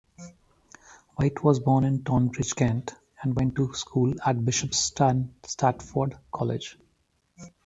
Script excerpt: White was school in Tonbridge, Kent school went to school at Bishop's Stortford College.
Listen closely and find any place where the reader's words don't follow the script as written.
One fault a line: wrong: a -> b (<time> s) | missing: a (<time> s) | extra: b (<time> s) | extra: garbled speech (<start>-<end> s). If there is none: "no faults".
wrong: school -> born (1.6 s)
wrong: school -> and (3.2 s)